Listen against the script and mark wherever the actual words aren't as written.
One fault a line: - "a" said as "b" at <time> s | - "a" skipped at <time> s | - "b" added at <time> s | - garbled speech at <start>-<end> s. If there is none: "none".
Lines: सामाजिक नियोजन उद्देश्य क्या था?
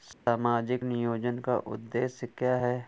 - "का" added at 1.4 s
- "था" said as "है" at 2.6 s